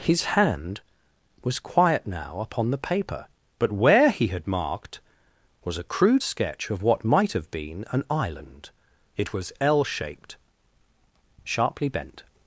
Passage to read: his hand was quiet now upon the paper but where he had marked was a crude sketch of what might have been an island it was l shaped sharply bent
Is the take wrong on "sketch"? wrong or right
right